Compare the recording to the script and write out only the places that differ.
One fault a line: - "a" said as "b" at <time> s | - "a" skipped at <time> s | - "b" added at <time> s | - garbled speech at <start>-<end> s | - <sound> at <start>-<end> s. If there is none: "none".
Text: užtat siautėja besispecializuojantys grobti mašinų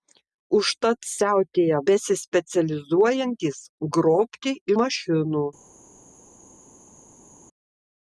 none